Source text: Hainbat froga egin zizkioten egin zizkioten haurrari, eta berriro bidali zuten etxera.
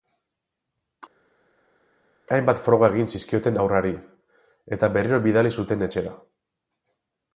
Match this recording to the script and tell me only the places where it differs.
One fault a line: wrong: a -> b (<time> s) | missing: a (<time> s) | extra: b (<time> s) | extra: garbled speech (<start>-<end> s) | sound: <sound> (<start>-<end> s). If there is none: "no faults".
missing: egin zizkioten (3.6 s)